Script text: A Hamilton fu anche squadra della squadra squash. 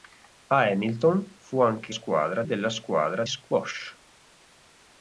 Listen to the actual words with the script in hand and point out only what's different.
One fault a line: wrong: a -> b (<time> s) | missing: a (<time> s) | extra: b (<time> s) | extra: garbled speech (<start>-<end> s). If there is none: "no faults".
no faults